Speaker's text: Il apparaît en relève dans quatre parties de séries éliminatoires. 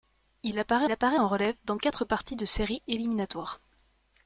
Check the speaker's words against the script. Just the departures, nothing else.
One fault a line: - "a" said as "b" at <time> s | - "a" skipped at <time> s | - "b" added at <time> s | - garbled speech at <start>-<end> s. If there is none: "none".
- "apparaît" added at 0.9 s